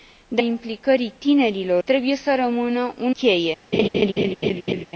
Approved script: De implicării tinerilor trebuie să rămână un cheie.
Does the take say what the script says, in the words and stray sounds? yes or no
no